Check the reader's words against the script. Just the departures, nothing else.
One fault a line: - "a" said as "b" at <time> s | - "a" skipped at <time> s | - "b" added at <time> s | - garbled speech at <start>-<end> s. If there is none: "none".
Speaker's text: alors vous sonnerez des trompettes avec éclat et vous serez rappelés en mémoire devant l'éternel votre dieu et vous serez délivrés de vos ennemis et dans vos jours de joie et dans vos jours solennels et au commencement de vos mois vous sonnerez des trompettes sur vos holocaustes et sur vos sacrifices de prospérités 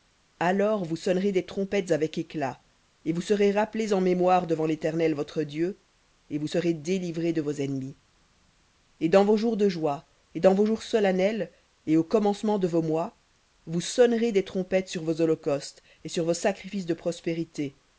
none